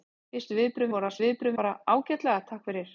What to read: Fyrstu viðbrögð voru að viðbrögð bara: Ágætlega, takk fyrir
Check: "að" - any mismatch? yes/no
no